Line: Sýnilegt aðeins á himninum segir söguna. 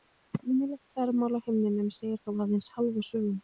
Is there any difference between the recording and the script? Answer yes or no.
yes